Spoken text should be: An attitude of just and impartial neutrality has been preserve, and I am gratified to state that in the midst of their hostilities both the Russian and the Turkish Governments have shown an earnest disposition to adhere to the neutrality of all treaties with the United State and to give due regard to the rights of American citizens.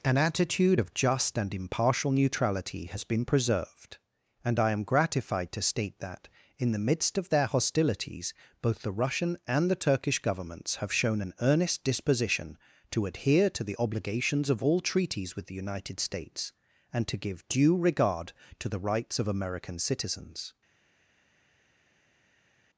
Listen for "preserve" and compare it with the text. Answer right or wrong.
wrong